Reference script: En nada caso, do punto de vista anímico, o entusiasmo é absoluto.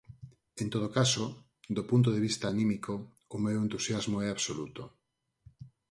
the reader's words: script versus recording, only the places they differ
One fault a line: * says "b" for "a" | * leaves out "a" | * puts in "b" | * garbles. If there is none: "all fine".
* says "todo" for "nada"
* puts in "meu"